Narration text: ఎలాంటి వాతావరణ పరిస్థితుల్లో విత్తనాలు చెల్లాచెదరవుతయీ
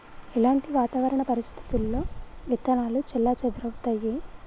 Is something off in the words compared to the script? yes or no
no